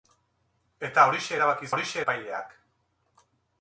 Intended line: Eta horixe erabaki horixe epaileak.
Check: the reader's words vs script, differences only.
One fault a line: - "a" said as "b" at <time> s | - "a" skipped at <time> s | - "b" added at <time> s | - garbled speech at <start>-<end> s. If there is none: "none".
none